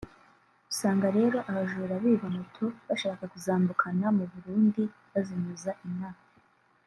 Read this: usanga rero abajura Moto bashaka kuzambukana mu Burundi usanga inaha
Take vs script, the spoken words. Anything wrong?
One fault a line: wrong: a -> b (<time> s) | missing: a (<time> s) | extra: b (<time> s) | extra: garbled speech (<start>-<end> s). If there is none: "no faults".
extra: biba (2.0 s)
wrong: usanga -> bazinyuza (5.1 s)